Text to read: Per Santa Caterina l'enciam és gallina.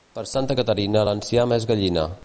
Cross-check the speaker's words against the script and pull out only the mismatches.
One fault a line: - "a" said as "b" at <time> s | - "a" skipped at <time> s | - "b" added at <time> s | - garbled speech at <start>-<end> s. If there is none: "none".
none